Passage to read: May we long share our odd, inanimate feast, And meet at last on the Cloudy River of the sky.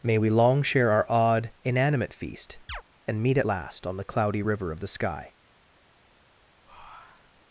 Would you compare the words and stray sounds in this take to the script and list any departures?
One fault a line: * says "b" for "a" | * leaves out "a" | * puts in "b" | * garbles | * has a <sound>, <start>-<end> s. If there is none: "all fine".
* has a chirp, 2.7-2.8 s
* has a breath, 6.6-7.4 s